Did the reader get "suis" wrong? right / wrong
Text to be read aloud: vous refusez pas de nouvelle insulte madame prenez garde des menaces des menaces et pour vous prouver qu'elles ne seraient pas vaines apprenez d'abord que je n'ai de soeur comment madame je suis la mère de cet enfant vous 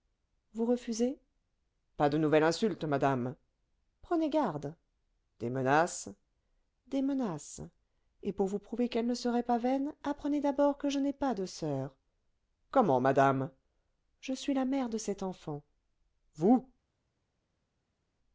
right